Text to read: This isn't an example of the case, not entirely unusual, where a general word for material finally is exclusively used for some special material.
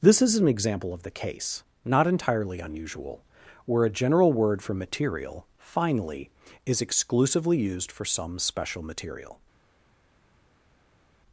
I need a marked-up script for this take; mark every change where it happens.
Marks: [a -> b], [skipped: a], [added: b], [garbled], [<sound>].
This [isn't -> is] an example of the case, not entirely unusual, where a general word for material finally is exclusively used for some special material.